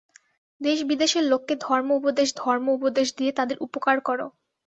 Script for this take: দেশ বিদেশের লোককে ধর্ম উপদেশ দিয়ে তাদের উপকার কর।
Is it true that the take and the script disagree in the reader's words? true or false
true